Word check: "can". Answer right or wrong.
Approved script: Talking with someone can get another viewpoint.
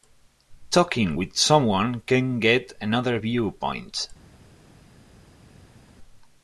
right